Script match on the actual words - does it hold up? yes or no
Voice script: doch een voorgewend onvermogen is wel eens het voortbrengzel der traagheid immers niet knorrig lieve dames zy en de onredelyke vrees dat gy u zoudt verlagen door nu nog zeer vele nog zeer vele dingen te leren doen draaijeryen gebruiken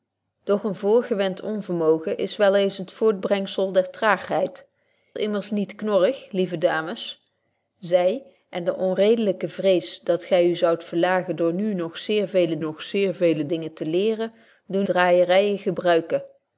yes